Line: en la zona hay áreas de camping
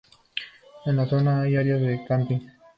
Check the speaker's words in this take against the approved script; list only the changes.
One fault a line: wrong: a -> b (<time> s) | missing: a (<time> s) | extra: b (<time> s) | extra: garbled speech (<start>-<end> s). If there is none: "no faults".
no faults